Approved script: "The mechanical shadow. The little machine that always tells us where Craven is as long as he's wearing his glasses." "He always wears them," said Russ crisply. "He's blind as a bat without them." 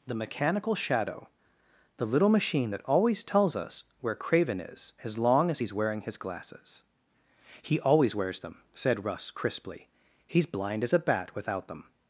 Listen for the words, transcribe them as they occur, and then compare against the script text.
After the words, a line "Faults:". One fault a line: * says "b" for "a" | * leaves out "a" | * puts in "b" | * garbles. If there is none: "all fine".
"The mechanical shadow. The little machine that always tells us where Craven is as long as he's wearing his glasses." "He always wears them," said Russ crisply. "He's blind as a bat without them."
Faults:
all fine